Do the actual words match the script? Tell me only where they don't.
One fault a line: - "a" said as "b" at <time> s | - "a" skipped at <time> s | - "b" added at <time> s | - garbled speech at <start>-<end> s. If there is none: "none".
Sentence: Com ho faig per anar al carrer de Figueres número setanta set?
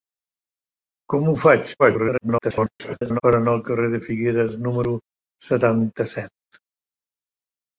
- garbled speech at 1.8-3.2 s